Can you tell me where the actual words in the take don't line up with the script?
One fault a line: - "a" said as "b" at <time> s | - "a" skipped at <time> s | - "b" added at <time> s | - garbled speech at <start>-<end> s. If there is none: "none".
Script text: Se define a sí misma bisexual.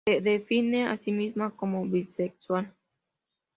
- "como" added at 1.6 s